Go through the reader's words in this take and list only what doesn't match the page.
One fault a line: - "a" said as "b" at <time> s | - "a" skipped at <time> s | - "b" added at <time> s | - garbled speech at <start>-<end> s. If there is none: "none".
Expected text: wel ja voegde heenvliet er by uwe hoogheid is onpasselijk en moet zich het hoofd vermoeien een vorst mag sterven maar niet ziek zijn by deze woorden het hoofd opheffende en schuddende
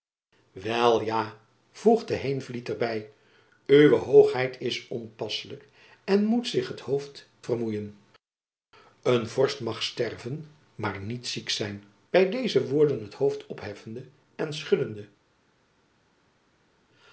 none